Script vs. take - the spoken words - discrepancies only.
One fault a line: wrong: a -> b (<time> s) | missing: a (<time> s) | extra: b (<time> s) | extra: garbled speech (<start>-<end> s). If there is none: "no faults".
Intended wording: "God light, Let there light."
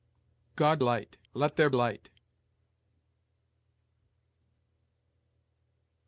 no faults